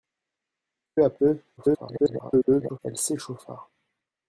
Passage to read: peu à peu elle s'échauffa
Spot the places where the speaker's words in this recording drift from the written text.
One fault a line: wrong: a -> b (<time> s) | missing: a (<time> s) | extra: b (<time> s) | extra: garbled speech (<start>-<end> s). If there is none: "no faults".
extra: garbled speech (1.6-2.8 s)